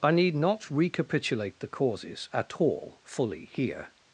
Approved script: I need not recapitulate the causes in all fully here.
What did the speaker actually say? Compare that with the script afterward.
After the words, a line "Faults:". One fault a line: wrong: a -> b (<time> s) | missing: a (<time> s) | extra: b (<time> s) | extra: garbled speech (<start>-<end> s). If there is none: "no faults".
I need not recapitulate the causes at all fully here.
Faults:
wrong: in -> at (2.3 s)